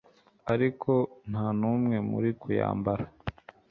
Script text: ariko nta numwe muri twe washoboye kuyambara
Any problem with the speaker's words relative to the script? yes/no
yes